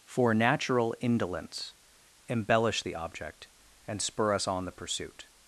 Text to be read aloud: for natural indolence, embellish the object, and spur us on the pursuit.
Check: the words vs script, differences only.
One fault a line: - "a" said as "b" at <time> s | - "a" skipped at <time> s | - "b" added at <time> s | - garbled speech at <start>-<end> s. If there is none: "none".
none